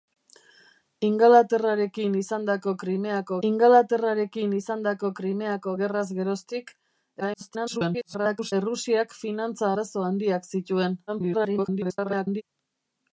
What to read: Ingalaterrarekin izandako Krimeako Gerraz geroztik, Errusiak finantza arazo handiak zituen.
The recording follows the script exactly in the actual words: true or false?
false